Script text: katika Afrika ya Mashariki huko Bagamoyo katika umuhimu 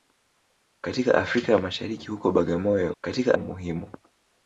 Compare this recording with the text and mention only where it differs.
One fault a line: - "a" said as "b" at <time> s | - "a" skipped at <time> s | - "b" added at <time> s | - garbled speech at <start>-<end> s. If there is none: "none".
none